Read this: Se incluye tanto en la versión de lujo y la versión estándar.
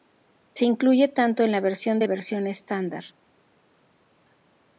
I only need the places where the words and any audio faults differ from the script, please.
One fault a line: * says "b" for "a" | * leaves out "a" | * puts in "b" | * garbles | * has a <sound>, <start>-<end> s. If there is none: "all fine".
* leaves out "lujo y la"